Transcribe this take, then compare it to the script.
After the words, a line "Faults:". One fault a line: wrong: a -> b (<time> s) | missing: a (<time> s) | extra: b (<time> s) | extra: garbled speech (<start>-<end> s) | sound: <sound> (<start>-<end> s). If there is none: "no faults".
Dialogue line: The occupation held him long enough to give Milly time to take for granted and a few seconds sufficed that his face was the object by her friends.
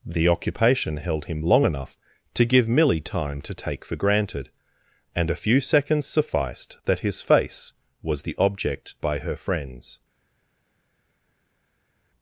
The occupation held him long enough to give Milly time to take for granted and a few seconds sufficed that his face was the object by her friends.
Faults:
no faults